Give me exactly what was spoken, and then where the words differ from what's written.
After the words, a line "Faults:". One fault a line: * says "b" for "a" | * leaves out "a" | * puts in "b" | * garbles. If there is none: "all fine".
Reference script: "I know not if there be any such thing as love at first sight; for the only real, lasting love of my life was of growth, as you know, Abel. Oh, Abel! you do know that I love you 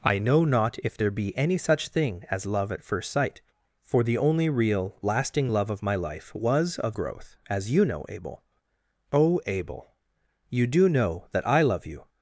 "I know not if there be any such thing as love at first sight; for the only real, lasting love of my life was of growth, as you know, Abel. Oh, Abel! you do know that I love you
Faults:
all fine